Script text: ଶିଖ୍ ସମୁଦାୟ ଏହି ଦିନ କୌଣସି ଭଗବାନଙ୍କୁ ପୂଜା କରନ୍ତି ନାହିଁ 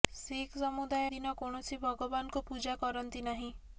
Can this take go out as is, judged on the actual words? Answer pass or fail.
fail